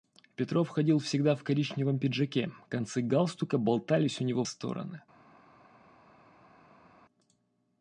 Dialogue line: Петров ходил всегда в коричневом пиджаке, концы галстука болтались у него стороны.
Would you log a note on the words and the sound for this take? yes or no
no